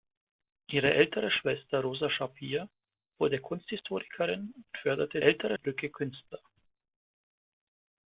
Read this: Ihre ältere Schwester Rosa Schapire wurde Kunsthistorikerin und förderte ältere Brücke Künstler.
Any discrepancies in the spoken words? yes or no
no